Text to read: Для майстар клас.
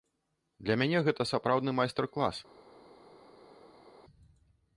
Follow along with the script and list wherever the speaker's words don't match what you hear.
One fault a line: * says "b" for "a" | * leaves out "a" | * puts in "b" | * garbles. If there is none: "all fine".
* puts in "мяне гэта сапраўдны"